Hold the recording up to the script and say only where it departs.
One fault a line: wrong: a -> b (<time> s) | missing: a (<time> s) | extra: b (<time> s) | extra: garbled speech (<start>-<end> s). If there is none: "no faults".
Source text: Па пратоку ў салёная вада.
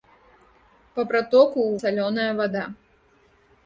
no faults